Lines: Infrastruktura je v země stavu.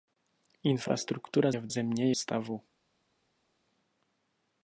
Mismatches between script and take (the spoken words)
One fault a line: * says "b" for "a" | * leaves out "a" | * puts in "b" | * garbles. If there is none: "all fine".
all fine